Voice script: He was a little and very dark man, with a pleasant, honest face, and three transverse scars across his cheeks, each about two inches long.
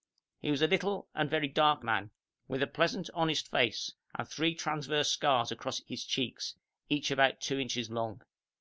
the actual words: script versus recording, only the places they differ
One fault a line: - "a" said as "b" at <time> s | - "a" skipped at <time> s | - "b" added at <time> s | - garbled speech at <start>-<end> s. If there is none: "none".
none